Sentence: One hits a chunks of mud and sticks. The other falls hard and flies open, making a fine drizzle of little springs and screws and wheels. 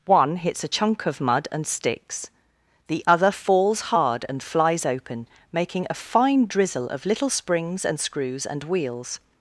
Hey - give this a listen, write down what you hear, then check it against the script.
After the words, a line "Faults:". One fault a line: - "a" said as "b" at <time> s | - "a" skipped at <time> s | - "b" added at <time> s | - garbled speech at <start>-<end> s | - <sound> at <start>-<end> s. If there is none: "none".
One hits a chunk of mud and sticks. The other falls hard and flies open, making a fine drizzle of little springs and screws and wheels.
Faults:
- "chunks" said as "chunk" at 0.7 s